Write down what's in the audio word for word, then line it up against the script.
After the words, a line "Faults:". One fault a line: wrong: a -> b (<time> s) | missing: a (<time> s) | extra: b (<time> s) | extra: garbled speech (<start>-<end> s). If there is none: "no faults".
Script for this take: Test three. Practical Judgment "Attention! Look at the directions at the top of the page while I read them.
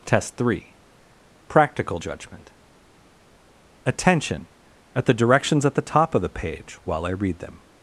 Test three. Practical Judgment "Attention! at the directions at the top of the page while I read them.
Faults:
missing: Look (4.5 s)